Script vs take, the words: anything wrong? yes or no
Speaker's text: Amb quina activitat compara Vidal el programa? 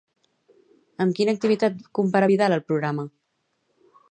no